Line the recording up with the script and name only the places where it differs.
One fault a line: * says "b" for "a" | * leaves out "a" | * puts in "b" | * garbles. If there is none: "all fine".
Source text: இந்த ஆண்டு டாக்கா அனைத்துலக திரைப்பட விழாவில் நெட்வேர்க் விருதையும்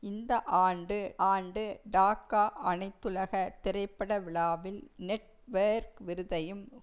* puts in "ஆண்டு"